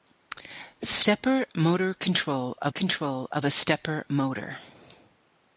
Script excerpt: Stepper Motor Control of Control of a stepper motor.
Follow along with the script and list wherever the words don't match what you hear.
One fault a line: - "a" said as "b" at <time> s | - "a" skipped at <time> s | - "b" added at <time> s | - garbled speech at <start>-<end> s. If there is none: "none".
none